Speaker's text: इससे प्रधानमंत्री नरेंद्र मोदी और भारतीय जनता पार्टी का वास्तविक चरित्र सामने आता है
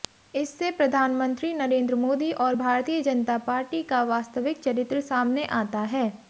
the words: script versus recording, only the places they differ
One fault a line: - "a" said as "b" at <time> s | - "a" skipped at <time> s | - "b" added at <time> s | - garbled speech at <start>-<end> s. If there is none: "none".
none